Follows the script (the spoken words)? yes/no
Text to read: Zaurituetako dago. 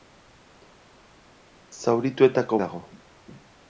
yes